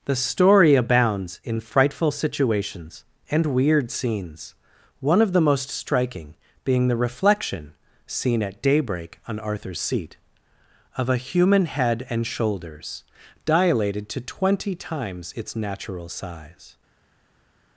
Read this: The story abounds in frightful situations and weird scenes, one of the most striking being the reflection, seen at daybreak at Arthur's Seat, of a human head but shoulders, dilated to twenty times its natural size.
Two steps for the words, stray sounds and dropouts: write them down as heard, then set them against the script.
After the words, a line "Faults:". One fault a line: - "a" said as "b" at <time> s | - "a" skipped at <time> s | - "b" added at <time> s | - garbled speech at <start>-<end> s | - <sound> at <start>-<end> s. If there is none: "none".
The story abounds in frightful situations and weird scenes, one of the most striking being the reflection, seen at daybreak on Arthur's Seat, of a human head and shoulders, dilated to twenty times its natural size.
Faults:
- "at" said as "on" at 9.3 s
- "but" said as "and" at 12.1 s